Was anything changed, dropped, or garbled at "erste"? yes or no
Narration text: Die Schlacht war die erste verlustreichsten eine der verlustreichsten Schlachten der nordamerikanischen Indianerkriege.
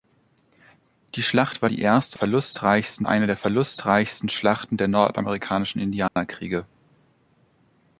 no